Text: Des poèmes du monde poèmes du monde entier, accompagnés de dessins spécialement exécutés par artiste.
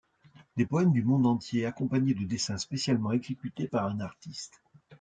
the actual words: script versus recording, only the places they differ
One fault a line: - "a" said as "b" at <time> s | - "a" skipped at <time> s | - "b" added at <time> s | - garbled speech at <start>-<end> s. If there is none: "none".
- "poèmes du monde" skipped at 1.3 s
- "un" added at 3.9 s